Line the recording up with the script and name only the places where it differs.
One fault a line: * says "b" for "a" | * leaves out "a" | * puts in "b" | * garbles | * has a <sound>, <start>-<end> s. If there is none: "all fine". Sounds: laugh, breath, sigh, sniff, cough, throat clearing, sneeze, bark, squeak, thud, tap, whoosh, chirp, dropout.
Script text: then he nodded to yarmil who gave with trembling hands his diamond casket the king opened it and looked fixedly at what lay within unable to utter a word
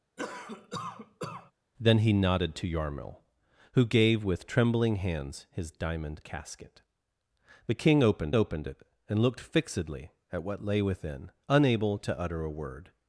* has a cough, 0.2-1.5 s
* puts in "opened"